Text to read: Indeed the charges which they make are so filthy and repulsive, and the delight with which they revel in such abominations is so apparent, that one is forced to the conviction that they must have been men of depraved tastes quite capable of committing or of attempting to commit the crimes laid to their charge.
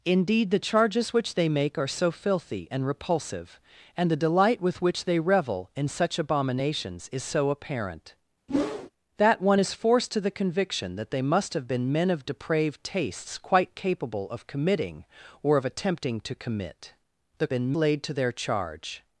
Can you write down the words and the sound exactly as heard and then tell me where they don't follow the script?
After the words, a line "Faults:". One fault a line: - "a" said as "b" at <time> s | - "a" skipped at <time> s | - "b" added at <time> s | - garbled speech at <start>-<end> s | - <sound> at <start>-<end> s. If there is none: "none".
Indeed the charges which they make are so filthy and repulsive, and the delight with which they revel in such abominations is so apparent, that one is forced to the conviction that they must have been men of depraved tastes quite capable of committing or of attempting to commit the been laid to their charge.
Faults:
- whoosh at 8.5-8.9 s
- "crimes" said as "been" at 17.5 s